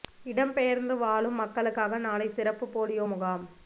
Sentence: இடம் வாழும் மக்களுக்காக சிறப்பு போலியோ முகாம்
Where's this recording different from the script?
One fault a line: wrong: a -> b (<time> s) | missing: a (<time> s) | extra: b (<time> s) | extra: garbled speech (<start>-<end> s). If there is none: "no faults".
extra: பெயர்ந்து (0.5 s)
extra: நாளை (2.0 s)